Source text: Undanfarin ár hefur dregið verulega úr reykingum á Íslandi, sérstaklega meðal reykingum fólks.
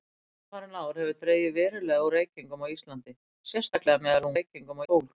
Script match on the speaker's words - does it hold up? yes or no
yes